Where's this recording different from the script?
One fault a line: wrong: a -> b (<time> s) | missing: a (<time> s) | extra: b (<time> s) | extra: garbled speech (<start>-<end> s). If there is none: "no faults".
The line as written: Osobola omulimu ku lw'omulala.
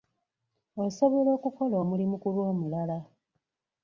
extra: okukola (1.4 s)